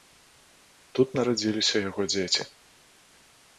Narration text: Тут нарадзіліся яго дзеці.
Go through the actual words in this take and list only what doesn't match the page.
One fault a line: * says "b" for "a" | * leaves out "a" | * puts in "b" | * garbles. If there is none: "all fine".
all fine